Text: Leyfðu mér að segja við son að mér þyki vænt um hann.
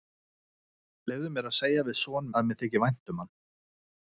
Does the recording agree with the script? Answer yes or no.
yes